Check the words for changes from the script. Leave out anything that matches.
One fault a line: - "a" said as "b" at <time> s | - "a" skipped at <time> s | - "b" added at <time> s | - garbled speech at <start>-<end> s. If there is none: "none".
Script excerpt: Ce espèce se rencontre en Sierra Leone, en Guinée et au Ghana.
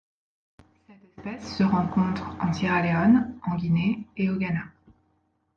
- "Ce" said as "Cette" at 0.9 s